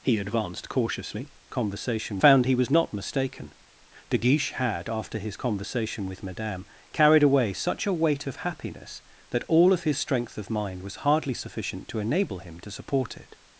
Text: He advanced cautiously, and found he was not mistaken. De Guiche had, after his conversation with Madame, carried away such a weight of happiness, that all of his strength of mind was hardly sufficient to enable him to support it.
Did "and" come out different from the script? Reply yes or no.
yes